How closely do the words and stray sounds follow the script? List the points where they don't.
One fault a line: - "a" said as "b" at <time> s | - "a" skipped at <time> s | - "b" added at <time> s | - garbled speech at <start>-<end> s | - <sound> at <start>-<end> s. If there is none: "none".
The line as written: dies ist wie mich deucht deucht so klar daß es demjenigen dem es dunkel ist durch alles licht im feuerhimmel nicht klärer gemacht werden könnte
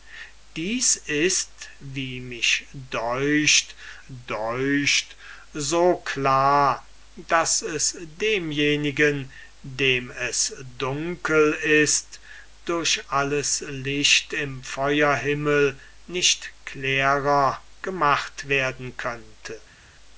none